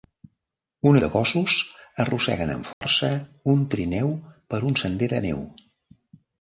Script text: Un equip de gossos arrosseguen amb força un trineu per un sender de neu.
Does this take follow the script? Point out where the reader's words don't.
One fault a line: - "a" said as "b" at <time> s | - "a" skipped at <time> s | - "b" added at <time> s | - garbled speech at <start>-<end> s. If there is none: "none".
- "equip" skipped at 0.9 s